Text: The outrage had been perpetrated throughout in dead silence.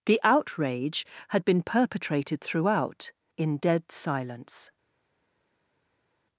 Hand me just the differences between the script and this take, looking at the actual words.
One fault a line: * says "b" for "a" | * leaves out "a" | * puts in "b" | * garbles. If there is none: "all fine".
all fine